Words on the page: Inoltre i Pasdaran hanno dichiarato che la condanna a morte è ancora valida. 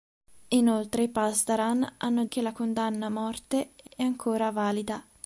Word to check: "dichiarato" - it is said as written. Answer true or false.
false